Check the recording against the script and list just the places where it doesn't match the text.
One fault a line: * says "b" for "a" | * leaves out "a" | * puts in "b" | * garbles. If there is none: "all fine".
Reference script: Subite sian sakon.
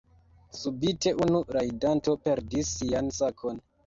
* puts in "unu rajdanto perdis"